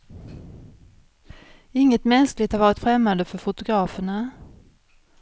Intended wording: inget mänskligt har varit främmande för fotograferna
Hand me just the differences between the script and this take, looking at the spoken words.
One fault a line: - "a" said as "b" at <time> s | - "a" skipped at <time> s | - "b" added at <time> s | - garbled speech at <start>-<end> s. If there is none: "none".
none